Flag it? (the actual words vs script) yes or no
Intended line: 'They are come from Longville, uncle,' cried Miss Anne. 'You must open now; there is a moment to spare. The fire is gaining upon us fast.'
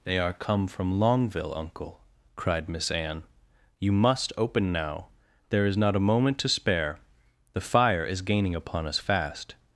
yes